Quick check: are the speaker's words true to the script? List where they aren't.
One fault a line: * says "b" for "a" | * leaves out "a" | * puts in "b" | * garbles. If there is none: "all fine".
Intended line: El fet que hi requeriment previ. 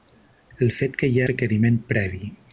all fine